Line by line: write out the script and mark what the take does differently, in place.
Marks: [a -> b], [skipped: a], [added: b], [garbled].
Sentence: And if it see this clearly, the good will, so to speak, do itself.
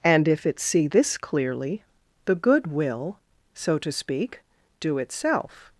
And if it see this clearly, the good will, so to speak, do itself.